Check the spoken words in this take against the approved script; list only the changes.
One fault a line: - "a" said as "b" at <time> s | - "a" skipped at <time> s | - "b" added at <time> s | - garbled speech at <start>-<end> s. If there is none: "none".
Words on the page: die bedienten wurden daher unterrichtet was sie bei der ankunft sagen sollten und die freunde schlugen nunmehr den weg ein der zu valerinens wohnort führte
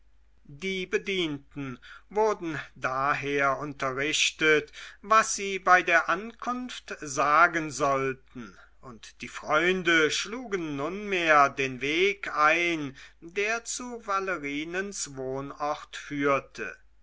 none